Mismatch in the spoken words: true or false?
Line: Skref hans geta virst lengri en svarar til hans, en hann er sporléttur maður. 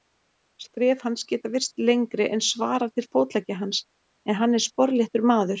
true